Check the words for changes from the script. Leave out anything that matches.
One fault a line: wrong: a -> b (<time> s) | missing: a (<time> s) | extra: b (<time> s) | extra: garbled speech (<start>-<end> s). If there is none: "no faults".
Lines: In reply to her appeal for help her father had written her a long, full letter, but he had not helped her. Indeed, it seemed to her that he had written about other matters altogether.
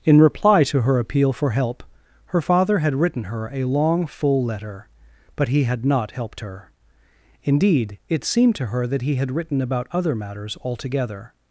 no faults